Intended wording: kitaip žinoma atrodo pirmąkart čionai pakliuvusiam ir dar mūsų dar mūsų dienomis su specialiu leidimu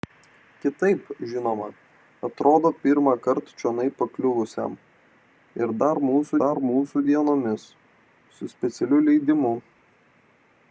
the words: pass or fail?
pass